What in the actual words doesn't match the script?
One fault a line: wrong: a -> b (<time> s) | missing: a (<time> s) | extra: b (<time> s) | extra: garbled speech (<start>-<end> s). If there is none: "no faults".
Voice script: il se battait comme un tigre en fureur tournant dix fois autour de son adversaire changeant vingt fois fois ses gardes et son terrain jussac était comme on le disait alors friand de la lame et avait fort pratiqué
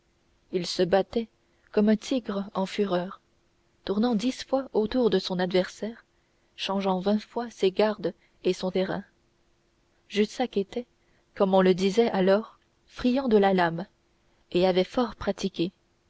missing: fois (7.5 s)